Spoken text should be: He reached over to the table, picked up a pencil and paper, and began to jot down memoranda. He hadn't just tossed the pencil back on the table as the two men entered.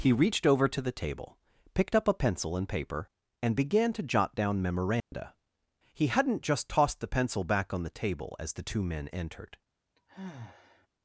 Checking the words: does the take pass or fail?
pass